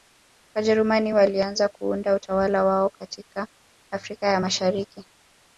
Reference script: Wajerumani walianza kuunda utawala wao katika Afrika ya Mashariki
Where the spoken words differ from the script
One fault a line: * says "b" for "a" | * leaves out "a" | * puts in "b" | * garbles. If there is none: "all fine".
all fine